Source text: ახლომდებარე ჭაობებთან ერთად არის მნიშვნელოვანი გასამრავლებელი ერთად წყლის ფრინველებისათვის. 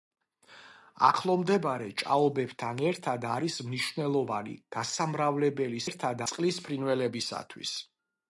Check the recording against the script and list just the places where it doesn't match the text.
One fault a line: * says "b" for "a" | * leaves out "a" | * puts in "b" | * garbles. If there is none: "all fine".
all fine